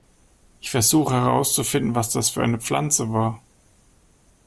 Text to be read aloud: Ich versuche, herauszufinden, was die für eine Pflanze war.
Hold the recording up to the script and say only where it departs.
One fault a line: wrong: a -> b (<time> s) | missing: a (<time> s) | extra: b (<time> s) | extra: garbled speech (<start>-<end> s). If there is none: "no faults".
wrong: die -> das (2.1 s)